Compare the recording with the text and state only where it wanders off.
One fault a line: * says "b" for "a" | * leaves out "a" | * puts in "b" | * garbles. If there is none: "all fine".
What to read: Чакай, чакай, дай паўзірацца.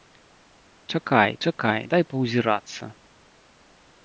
all fine